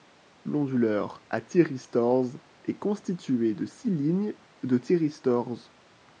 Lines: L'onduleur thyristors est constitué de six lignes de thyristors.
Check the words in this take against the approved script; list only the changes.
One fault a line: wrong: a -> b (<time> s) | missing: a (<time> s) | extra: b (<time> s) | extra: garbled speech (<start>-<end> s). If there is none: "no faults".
extra: à (1.3 s)